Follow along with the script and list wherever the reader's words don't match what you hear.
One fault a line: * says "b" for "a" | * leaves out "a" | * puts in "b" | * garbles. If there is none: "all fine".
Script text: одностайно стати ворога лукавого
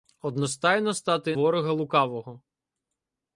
all fine